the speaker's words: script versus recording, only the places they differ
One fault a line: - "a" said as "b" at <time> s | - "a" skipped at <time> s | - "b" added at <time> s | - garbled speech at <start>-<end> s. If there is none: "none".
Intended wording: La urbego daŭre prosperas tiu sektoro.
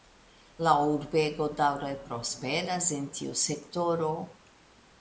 - "en" added at 3.0 s